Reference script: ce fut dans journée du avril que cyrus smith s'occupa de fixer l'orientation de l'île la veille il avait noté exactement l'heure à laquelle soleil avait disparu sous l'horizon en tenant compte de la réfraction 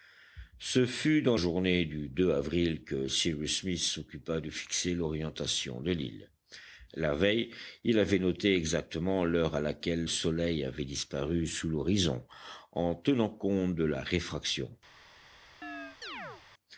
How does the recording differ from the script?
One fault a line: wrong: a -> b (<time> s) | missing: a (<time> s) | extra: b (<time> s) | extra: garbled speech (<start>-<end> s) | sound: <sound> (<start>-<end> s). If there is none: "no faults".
sound: chirp (15.6-16.4 s)